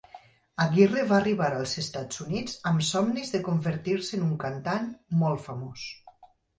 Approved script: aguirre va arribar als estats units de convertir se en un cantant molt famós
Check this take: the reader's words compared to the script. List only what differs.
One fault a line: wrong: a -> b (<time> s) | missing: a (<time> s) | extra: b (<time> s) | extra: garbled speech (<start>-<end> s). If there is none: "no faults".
extra: amb somnis (2.7 s)